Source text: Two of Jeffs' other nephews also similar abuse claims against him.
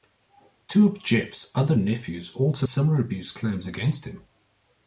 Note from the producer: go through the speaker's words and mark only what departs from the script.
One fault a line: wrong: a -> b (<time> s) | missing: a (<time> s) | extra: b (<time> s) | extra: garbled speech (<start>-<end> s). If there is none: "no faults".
no faults